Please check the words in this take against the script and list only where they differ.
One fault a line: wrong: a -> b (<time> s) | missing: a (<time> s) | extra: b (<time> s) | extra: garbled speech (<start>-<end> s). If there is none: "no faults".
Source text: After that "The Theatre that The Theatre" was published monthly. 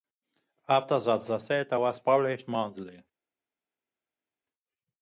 missing: that The Theatre (1.8 s)